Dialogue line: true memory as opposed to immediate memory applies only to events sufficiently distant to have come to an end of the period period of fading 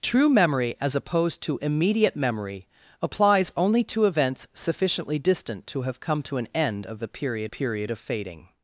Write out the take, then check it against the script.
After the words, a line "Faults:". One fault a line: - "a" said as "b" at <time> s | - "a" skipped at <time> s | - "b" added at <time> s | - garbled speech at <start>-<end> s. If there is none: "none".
true memory as opposed to immediate memory applies only to events sufficiently distant to have come to an end of the period period of fading
Faults:
none